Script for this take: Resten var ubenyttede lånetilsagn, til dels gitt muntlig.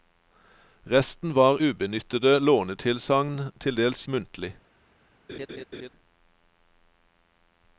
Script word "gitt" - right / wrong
wrong